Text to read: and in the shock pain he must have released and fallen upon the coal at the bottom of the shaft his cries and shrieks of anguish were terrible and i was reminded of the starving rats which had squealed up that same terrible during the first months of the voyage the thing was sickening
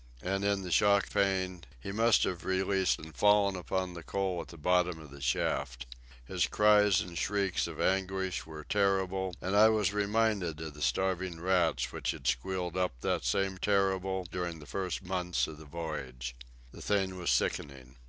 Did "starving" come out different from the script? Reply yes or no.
no